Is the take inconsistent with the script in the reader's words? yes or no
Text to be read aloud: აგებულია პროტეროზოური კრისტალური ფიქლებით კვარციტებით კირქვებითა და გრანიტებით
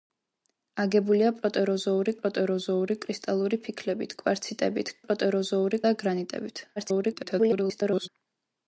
yes